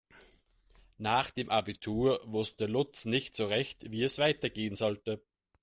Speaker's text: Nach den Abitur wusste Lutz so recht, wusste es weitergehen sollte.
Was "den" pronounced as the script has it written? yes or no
no